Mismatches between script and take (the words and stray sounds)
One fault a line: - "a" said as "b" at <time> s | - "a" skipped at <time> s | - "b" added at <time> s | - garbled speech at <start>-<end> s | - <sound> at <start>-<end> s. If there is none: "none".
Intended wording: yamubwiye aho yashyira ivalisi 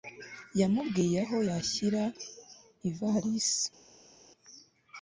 none